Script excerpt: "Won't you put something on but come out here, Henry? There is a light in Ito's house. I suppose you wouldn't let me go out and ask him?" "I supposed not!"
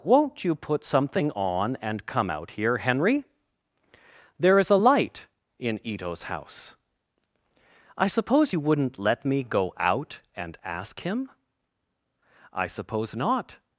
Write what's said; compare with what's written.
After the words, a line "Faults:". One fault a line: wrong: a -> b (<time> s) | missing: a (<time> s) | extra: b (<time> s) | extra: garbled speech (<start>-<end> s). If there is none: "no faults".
"Won't you put something on and come out here, Henry? There is a light in Ito's house. I suppose you wouldn't let me go out and ask him?" "I suppose not!"
Faults:
wrong: but -> and (1.8 s)
wrong: supposed -> suppose (12.7 s)